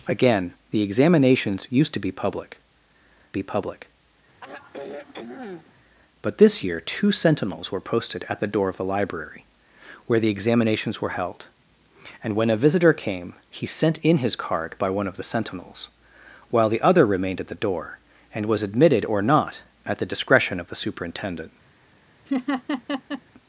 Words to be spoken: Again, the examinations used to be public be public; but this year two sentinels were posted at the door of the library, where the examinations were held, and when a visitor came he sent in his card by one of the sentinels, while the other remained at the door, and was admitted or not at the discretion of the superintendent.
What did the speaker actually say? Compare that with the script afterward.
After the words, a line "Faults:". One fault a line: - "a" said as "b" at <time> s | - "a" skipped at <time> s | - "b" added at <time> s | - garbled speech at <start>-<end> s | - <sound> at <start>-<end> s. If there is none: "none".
Again, the examinations used to be public be public; but this year two sentinels were posted at the door of the library, where the examinations were held, and when a visitor came he sent in his card by one of the sentinels, while the other remained at the door, and was admitted or not at the discretion of the superintendent.
Faults:
- sigh at 4.4-5.7 s
- laugh at 22.3-23.2 s